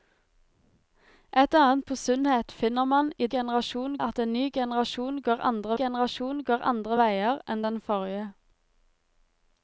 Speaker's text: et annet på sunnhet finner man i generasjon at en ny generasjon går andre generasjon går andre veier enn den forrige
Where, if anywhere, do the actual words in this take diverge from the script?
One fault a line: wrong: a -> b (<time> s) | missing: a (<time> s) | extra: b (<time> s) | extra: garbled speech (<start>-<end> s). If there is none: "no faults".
no faults